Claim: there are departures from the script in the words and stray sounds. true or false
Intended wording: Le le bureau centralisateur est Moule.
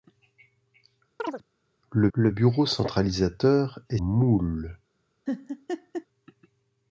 true